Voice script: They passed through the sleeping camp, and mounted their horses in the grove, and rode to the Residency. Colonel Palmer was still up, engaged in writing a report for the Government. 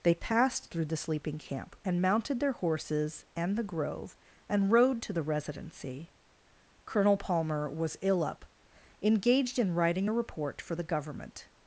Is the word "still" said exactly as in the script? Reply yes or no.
no